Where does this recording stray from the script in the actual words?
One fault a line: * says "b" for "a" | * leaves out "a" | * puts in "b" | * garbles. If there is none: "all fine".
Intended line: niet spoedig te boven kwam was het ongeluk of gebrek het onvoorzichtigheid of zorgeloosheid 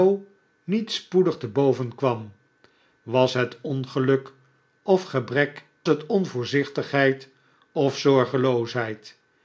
all fine